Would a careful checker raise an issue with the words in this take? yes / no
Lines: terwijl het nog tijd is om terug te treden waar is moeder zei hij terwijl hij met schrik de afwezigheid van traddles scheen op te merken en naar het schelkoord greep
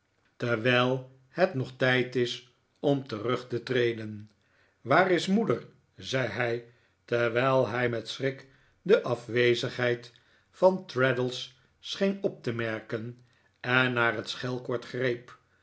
no